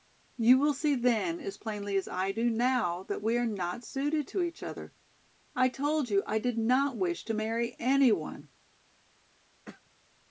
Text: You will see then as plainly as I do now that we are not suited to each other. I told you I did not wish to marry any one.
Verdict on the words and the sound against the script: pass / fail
fail